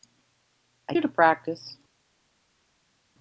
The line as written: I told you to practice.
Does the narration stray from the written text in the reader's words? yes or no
yes